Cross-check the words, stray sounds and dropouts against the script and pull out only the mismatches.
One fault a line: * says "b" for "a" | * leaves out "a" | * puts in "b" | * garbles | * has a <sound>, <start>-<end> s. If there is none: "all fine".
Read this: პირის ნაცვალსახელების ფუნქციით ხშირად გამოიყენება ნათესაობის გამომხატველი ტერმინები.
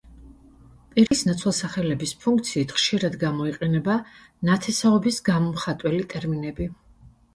* has a dropout, 1.1-1.1 s